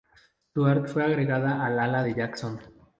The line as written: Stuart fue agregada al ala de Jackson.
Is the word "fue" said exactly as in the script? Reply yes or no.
yes